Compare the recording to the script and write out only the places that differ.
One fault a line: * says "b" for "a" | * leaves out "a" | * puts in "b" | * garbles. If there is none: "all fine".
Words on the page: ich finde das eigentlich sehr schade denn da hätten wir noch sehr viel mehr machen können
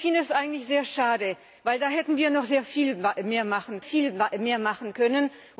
* puts in "viel mehr machen"